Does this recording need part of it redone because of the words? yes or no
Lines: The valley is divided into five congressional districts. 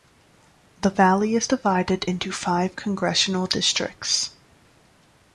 no